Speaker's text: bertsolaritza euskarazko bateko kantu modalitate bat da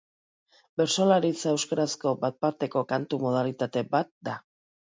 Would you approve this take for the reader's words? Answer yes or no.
no